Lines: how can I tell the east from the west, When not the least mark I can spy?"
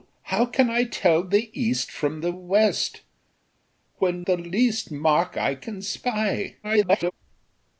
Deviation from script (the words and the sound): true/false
true